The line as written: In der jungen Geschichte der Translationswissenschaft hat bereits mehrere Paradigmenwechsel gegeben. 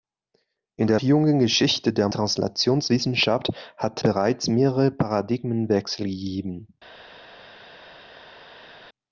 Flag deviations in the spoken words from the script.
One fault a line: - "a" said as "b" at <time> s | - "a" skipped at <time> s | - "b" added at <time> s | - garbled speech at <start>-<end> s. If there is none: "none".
none